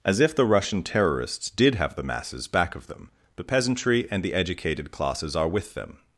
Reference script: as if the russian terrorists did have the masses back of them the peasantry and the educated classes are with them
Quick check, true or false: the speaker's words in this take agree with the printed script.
true